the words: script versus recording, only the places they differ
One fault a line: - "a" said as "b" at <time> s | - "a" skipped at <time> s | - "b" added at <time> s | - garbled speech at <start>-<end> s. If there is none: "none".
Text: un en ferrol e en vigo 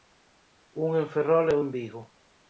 none